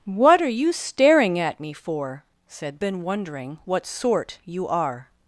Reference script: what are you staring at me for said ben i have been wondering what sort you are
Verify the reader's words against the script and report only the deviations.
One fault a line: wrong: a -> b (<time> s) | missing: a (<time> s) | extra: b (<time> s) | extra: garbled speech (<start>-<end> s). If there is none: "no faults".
missing: ben i have (2.8 s)